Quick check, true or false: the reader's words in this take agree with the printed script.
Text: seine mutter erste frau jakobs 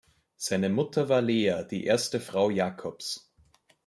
false